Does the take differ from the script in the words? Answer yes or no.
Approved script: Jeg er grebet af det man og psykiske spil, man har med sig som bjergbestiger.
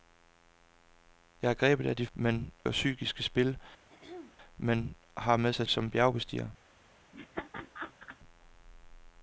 no